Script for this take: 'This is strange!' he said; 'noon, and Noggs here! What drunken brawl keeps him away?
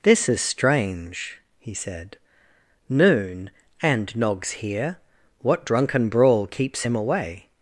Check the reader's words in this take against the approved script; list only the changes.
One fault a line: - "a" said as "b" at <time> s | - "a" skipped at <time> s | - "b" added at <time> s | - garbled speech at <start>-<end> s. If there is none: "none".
none